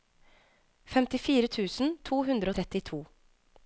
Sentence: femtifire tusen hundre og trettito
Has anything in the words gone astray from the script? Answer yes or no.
yes